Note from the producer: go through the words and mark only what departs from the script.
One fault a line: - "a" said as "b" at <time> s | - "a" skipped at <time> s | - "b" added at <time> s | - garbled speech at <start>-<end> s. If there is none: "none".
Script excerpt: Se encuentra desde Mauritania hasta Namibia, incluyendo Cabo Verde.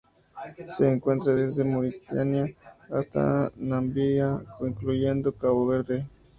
none